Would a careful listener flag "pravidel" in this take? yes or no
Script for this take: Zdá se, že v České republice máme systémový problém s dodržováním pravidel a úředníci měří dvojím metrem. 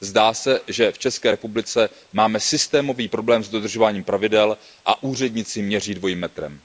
no